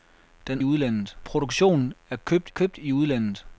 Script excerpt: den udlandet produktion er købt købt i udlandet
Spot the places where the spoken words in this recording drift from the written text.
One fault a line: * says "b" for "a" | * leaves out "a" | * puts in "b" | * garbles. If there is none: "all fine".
all fine